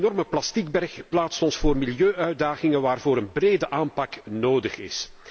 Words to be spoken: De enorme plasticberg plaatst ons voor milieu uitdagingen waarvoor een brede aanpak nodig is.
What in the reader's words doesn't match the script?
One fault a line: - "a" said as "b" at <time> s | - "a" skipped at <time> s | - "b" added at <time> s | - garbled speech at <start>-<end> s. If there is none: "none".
none